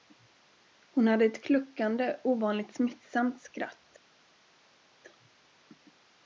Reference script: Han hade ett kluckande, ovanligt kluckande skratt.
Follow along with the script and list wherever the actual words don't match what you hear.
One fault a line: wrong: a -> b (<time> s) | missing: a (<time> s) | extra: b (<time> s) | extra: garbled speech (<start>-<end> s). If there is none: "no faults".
wrong: Han -> Hon (0.9 s)
wrong: kluckande -> smittsamt (2.7 s)